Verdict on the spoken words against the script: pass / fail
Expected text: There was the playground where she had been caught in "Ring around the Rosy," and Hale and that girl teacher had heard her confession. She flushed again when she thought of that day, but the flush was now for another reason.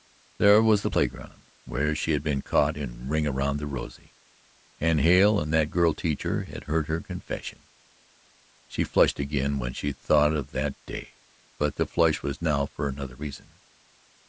pass